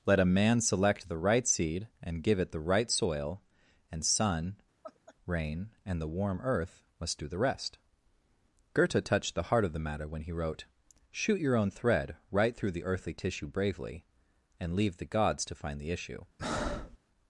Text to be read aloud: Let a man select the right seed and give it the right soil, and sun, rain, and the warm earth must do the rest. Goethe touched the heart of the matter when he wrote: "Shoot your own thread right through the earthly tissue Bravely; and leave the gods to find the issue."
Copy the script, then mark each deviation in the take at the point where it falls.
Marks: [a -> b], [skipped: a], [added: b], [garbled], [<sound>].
Let a man select the right seed and give it the right soil, and sun, [laugh] rain, and the warm earth must do the rest. Goethe touched the heart of the matter when he wrote: "Shoot your own thread right through the earthly tissue Bravely; and leave the gods to find the issue." [breath]